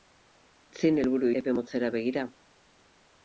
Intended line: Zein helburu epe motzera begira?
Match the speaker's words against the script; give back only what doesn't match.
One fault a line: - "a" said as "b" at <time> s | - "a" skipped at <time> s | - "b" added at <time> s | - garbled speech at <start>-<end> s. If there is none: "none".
none